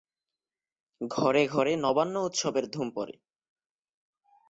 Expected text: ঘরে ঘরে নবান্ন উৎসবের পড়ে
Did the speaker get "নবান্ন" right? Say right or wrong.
right